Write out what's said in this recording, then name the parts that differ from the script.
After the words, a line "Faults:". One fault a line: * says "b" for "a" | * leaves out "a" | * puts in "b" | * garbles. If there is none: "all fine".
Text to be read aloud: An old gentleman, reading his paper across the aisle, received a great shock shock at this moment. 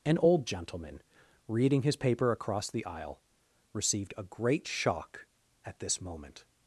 An old gentleman, reading his paper across the aisle, received a great shock at this moment.
Faults:
* leaves out "shock"